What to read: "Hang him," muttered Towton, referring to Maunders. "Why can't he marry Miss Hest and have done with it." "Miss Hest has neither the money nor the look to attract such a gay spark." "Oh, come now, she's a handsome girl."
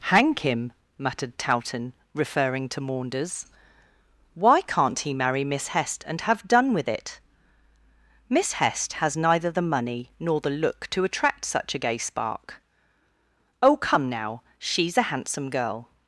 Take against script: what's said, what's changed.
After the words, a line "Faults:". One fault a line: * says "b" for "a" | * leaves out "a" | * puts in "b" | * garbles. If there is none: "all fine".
"Hang him," muttered Towton, referring to Maunders. "Why can't he marry Miss Hest and have done with it." "Miss Hest has neither the money nor the look to attract such a gay spark." "Oh, come now, she's a handsome girl."
Faults:
all fine